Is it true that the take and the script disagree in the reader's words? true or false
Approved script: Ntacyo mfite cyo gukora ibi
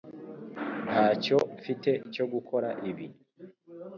false